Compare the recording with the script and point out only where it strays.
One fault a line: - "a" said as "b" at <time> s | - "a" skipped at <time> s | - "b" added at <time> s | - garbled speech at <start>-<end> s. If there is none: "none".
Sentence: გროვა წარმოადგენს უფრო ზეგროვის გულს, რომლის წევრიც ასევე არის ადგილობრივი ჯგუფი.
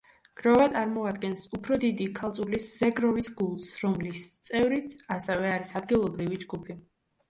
- "დიდი ქალწულის" added at 1.8 s